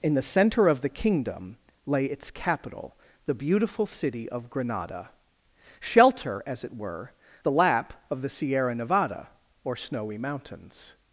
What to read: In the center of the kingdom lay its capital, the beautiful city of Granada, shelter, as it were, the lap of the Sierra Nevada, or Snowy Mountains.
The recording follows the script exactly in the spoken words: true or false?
true